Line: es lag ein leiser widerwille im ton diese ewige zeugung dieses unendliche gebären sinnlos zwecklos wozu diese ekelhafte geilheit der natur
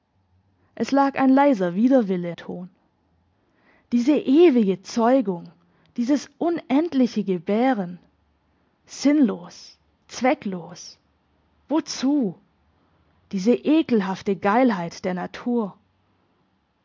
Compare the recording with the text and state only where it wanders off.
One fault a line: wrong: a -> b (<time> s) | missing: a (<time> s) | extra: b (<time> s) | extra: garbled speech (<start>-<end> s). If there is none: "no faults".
missing: im (2.3 s)